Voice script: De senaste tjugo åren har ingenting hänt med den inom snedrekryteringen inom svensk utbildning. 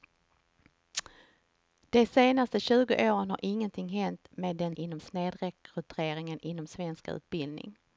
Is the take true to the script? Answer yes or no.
yes